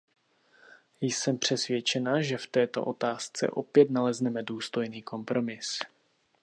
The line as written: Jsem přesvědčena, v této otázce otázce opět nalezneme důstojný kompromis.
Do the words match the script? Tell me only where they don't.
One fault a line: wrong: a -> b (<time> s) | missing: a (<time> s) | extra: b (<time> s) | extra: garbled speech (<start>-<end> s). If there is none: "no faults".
extra: že (2.2 s)
missing: otázce (3.5 s)